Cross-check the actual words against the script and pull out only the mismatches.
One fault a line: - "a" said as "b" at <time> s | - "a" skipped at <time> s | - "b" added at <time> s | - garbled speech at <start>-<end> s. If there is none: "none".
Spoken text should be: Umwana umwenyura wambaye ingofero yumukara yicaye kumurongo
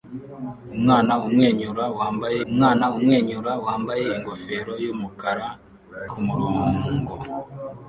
- "umwana umwenyura wambaye" added at 2.5 s
- "yicaye" skipped at 5.5 s